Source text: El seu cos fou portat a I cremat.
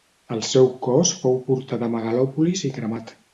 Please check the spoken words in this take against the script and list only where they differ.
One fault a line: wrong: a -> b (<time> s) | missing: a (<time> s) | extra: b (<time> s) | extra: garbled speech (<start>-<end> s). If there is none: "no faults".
extra: Megalòpolis (2.0 s)